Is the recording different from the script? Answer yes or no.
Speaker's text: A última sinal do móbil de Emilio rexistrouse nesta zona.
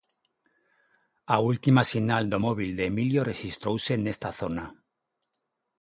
no